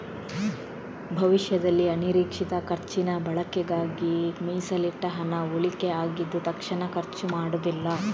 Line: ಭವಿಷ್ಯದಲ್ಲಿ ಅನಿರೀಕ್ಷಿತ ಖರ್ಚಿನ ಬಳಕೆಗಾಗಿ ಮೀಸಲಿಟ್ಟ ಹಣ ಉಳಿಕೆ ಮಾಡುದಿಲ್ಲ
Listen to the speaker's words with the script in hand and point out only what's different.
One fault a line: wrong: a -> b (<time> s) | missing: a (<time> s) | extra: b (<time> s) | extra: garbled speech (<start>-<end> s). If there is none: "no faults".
extra: ಆಗಿದ್ದು ತಕ್ಷಣ ಖರ್ಚು (6.0 s)